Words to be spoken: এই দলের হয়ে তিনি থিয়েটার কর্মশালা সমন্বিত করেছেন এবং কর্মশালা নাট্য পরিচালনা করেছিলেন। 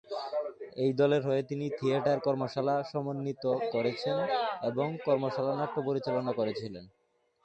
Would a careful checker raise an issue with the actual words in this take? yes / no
no